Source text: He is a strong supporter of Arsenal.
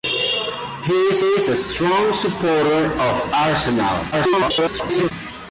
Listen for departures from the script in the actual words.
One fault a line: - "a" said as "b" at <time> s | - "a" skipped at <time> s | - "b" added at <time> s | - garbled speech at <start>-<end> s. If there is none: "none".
- "is" added at 1.2 s
- garbled speech at 4.1-5.1 s